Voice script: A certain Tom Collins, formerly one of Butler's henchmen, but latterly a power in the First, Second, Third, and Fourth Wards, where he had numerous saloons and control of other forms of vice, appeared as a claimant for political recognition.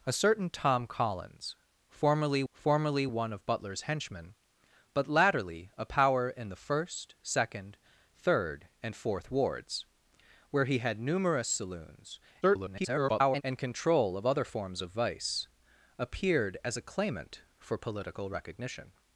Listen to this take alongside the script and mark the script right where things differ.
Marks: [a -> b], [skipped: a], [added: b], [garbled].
A certain Tom Collins, formerly [added: formerly] one of Butler's henchmen, but latterly a power in the First, Second, Third, and Fourth Wards, where he had numerous saloons [garbled] and control of other forms of vice, appeared as a claimant for political recognition.